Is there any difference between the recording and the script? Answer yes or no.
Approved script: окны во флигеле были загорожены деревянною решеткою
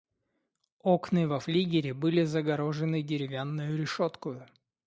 no